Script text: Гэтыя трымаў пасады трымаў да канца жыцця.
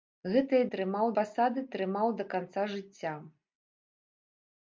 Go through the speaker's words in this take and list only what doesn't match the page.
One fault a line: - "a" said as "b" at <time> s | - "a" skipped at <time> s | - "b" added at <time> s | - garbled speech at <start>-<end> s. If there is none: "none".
none